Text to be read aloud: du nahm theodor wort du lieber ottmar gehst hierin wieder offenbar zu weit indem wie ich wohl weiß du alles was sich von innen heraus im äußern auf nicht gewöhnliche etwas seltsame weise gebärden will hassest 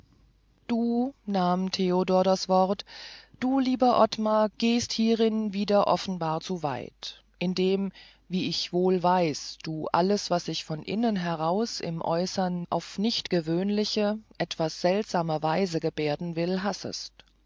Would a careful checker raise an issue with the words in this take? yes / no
yes